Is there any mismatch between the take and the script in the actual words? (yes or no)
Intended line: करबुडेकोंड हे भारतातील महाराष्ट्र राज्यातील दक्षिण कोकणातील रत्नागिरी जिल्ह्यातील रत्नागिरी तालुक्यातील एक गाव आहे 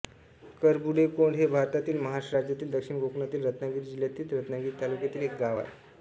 no